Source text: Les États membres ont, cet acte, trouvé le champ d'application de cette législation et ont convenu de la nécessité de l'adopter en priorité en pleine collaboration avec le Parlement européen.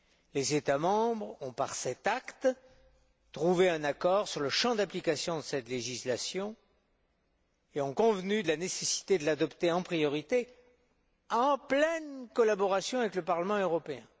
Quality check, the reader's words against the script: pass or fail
fail